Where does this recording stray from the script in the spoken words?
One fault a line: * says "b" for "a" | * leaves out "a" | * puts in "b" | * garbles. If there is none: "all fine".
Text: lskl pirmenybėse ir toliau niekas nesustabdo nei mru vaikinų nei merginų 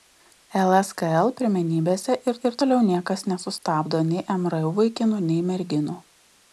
* puts in "ir"